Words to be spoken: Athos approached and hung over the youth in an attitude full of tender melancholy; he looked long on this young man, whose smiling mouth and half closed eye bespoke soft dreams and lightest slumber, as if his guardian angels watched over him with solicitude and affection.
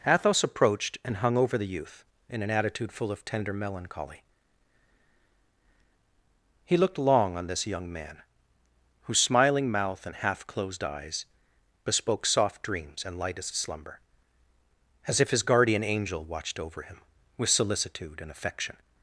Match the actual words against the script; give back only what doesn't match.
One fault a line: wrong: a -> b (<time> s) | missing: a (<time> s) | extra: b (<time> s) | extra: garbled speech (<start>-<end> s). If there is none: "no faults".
wrong: eye -> eyes (10.8 s)
wrong: angels -> angel (15.8 s)